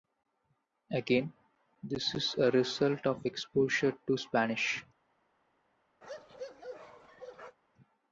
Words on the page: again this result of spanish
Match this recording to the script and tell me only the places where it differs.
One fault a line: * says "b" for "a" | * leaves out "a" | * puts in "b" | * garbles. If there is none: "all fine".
* puts in "is a"
* puts in "exposure to"